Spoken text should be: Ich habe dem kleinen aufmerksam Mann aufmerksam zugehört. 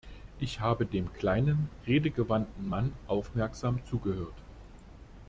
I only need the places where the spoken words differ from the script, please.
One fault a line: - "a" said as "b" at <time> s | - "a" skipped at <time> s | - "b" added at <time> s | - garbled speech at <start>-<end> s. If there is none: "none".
- "aufmerksam" said as "redegewandten" at 1.9 s